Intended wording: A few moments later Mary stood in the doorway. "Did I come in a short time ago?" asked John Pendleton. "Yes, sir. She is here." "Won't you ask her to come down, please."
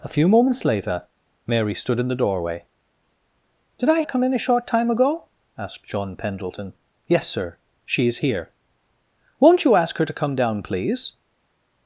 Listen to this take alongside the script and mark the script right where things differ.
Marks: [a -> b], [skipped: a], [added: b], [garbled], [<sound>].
A few moments later Mary stood in the doorway. "Did I come in a short time ago?" asked John Pendleton. "Yes, sir. She is here." "Won't you ask her to come down, please."